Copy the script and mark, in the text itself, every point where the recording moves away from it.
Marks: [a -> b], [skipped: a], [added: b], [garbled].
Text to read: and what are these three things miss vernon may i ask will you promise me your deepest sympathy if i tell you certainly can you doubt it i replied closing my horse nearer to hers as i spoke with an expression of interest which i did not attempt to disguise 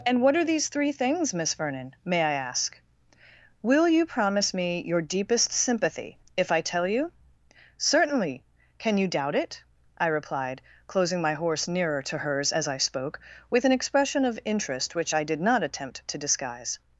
and what are these three things miss vernon may i ask will you promise me your deepest sympathy if i tell you certainly can you doubt it i replied closing my horse nearer to hers as i spoke with an expression of interest which i did not attempt to disguise